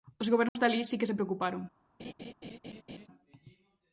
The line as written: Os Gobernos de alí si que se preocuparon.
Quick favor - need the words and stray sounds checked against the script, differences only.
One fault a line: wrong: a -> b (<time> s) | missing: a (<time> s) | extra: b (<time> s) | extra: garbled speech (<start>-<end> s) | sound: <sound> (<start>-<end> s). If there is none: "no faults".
sound: dropout (0.5-0.6 s)
sound: laugh (2.0-3.1 s)